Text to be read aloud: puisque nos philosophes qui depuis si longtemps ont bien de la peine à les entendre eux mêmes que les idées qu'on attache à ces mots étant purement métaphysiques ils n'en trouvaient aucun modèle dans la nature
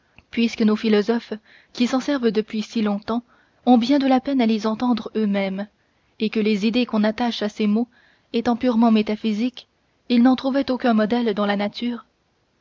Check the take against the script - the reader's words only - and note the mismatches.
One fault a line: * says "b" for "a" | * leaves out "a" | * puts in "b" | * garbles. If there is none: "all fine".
* puts in "s'en servent"
* puts in "et"